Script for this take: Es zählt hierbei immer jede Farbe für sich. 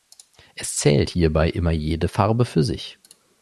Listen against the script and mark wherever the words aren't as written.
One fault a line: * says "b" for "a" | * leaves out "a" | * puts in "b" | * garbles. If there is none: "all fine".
all fine